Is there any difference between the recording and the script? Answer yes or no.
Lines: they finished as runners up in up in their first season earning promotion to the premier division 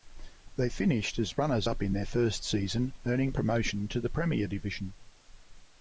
yes